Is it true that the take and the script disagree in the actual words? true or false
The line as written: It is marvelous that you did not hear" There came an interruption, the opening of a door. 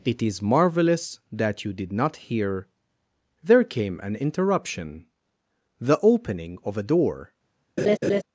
false